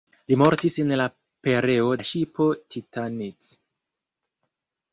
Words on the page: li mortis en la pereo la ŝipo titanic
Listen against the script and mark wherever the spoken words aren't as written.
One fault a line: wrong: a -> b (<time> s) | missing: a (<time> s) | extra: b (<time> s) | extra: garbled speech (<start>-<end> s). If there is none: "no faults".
no faults